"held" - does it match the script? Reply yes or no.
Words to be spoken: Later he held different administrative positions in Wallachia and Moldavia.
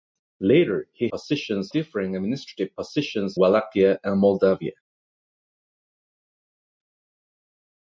no